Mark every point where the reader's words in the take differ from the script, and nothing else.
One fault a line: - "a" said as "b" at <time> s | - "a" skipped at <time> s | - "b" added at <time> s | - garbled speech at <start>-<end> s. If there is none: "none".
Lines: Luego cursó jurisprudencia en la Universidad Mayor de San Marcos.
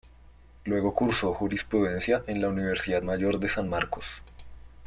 none